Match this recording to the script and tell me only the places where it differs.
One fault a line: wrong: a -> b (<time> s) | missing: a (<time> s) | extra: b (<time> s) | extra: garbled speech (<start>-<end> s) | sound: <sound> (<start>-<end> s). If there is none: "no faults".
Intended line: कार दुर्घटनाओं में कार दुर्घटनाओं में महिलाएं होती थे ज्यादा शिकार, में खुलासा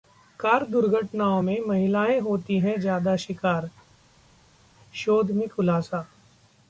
missing: कार दुर्घटनाओं में (1.6 s)
wrong: थे -> हैं (2.6 s)
extra: शोध (4.9 s)